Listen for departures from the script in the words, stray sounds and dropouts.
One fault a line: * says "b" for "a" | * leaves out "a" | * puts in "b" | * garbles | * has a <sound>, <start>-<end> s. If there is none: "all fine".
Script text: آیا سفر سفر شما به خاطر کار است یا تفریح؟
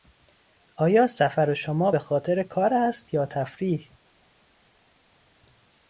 * leaves out "سفر"